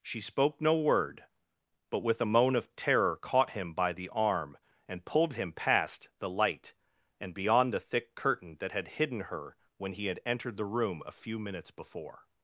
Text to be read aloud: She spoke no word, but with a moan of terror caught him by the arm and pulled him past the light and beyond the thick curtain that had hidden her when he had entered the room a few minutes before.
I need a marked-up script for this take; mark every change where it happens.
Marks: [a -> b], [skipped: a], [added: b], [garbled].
She spoke no word, but with a moan of terror caught him by the arm and pulled him past the light and beyond the thick curtain that had hidden her when he had entered the room a few minutes before.